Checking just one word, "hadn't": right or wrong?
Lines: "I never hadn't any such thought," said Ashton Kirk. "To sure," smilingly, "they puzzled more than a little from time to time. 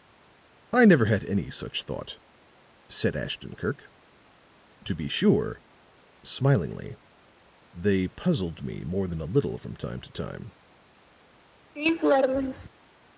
wrong